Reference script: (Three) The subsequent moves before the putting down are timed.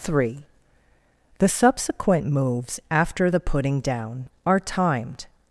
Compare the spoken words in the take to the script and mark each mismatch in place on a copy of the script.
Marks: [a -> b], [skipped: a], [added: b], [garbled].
(Three) The subsequent moves [before -> after] the putting down are timed.